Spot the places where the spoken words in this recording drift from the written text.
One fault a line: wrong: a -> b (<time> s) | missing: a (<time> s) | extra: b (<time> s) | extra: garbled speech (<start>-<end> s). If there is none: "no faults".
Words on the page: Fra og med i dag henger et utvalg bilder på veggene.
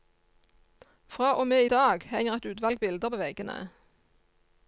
no faults